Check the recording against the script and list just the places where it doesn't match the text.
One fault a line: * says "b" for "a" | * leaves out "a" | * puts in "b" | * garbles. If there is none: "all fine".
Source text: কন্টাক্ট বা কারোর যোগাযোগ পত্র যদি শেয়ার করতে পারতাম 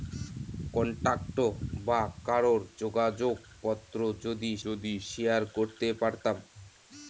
* puts in "যদি"